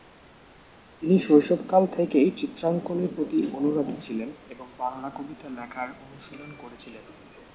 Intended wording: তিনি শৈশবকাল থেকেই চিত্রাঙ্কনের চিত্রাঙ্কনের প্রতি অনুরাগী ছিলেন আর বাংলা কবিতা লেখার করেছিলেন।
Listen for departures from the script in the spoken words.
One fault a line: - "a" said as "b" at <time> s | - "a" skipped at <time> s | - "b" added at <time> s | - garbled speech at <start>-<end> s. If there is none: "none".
- "চিত্রাঙ্কনের" skipped at 3.1 s
- "আর" said as "এবং" at 4.5 s
- "অনুশীলন" added at 6.0 s